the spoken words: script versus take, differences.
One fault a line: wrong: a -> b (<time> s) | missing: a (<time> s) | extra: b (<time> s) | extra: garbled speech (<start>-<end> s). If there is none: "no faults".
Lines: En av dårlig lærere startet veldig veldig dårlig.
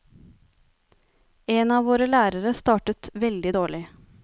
wrong: dårlig -> våre (1.9 s)
missing: veldig (3.5 s)